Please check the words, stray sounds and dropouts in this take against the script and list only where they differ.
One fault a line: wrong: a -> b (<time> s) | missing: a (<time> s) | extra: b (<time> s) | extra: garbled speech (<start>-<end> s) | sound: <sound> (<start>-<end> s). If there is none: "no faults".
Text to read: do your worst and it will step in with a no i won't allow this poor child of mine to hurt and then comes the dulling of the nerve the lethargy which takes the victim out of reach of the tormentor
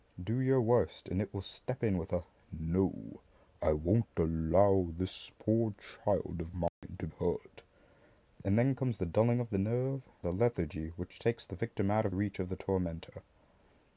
sound: dropout (6.7-6.8 s)